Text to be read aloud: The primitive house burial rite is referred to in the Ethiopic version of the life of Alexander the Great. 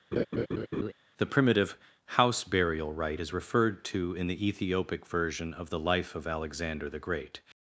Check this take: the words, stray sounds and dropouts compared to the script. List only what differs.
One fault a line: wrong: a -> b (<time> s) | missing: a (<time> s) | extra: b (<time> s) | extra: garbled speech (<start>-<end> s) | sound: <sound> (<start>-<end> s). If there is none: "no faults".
sound: laugh (0.1-0.9 s)